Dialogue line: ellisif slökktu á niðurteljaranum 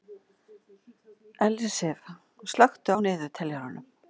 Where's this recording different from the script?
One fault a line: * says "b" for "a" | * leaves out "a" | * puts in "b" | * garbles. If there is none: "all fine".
all fine